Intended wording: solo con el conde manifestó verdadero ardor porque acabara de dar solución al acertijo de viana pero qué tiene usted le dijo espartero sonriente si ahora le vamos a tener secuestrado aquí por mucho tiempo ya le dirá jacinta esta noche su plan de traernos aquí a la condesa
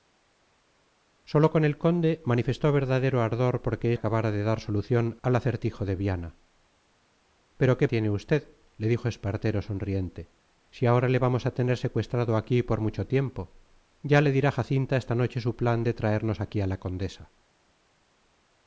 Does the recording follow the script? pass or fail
pass